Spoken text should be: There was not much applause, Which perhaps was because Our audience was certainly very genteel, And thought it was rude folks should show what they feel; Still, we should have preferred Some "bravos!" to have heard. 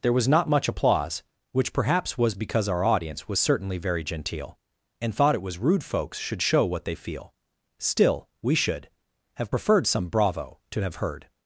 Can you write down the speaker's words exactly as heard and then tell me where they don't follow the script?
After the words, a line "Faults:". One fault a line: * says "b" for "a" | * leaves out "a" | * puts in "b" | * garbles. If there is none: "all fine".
There was not much applause, Which perhaps was because Our audience was certainly very genteel, And thought it was rude folks should show what they feel; Still, we should have preferred Some "bravo!" to have heard.
Faults:
* says "bravo" for "bravos"